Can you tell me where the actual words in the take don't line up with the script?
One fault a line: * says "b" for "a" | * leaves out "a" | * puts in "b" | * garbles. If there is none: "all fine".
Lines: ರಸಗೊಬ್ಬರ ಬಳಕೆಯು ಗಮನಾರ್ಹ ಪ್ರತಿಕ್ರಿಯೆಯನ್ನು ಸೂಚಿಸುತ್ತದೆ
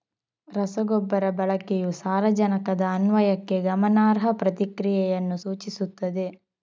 * puts in "ಸಾರಜನಕದ ಅನ್ವಯಕ್ಕೆ"